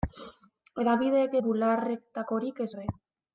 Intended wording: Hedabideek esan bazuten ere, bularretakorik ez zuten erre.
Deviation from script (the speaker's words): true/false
true